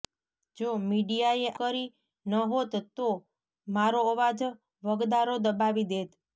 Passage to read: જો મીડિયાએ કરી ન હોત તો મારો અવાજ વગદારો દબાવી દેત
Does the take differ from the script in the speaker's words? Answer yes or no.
no